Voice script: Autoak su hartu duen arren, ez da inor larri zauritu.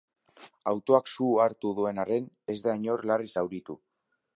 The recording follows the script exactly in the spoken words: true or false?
true